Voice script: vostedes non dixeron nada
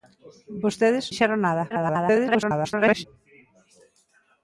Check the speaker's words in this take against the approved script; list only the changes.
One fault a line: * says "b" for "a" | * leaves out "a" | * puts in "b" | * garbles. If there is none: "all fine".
* leaves out "non"
* garbles